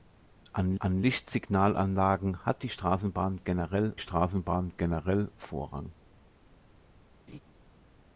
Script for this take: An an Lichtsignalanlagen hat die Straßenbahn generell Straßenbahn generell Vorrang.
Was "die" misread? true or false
false